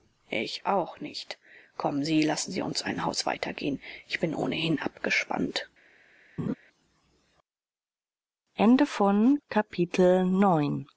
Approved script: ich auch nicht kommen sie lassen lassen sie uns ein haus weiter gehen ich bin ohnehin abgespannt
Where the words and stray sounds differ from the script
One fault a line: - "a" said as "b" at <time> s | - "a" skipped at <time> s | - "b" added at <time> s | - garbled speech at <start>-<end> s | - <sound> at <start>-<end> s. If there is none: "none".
- "lassen" skipped at 2.5 s
- laugh at 6.4-6.5 s